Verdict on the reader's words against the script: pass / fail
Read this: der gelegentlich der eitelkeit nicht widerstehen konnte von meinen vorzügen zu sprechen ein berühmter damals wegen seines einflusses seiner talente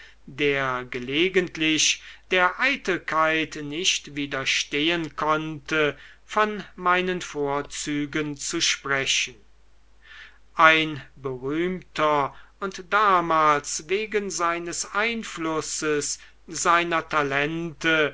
fail